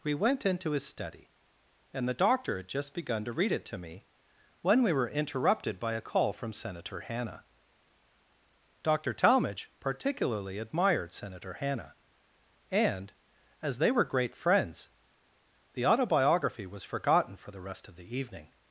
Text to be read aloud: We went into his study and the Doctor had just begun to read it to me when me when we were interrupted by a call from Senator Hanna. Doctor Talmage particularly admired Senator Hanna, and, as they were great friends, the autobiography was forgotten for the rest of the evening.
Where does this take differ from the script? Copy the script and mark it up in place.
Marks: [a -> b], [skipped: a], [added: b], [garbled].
We went into his study and the Doctor had just begun to read it to me when [skipped: me when] we were interrupted by a call from Senator Hanna. Doctor Talmage particularly admired Senator Hanna, and, as they were great friends, the autobiography was forgotten for the rest of the evening.